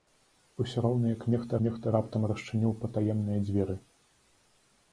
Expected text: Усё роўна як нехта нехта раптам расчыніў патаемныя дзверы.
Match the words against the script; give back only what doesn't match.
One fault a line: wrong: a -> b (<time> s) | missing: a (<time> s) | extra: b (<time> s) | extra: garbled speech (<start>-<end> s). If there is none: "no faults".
no faults